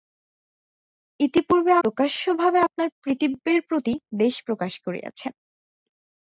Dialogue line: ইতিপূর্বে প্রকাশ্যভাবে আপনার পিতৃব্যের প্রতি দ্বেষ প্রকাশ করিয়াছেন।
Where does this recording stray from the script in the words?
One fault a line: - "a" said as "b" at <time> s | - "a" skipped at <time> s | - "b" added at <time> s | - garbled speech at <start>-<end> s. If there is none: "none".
none